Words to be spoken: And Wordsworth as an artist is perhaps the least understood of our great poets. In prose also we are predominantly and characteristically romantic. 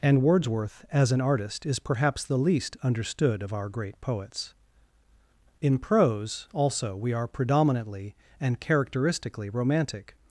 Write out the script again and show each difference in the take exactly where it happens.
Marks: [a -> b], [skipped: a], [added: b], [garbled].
And Wordsworth as an artist is perhaps the least understood of our great poets. In prose also we are predominantly and characteristically romantic.